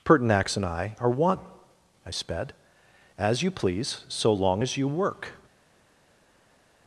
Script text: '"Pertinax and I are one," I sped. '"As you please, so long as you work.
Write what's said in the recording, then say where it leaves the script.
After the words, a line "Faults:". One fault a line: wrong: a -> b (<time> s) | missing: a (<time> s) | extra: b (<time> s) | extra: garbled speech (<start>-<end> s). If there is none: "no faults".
'"Pertinax and I are one," I sped. '"As you please, so long as you work.
Faults:
no faults